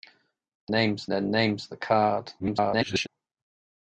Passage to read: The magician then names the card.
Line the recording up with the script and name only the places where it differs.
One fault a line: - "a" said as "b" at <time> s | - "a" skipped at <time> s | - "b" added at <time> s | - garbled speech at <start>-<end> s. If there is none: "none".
- "magician" said as "names" at 0.7 s
- garbled speech at 2.4-3.1 s